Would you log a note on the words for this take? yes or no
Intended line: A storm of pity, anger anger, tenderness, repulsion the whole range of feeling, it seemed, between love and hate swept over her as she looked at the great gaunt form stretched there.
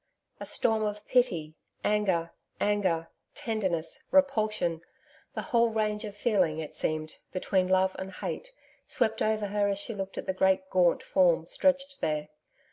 no